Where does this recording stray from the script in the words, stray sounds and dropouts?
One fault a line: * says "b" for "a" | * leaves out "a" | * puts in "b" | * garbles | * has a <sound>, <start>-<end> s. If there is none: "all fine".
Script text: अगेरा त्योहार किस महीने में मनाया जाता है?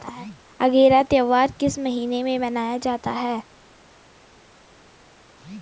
all fine